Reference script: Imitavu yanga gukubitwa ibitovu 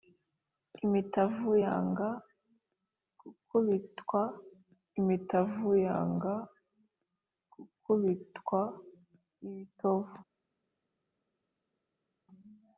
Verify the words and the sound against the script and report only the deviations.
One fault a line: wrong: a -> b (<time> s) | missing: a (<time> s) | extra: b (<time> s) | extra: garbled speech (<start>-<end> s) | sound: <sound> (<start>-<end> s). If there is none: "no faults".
extra: imitavu yanga gukubitwa (5.0 s)